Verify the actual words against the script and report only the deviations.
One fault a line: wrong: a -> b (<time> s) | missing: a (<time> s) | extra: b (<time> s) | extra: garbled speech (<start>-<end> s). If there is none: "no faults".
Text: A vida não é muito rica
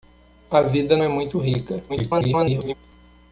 missing: não (1.0 s)
extra: garbled speech (1.9-2.7 s)